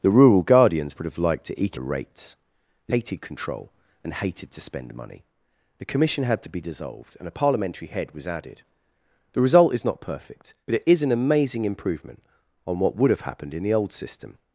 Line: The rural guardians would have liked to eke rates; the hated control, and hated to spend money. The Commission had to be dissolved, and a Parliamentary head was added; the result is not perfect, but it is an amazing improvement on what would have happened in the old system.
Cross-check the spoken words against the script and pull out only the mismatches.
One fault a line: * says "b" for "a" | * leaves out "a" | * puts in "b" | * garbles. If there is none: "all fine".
all fine